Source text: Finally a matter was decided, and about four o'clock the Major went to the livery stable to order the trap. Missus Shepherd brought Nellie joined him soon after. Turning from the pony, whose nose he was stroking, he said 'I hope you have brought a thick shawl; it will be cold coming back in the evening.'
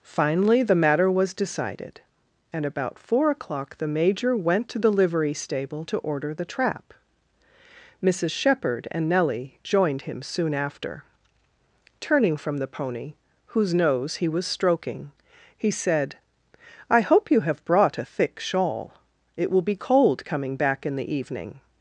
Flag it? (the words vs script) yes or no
yes